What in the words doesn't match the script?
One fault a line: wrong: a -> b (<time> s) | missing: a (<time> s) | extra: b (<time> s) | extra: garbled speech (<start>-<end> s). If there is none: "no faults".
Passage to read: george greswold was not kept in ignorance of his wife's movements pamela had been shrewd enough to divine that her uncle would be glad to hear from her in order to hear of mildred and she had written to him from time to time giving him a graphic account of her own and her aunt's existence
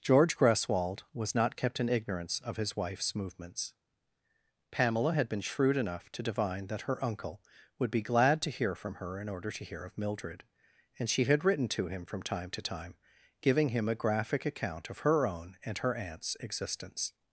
no faults